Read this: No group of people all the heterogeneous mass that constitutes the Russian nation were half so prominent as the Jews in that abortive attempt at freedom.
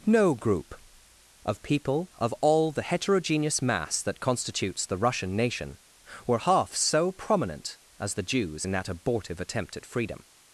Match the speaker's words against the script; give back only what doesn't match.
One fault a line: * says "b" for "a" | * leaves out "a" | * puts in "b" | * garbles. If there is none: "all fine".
* puts in "of"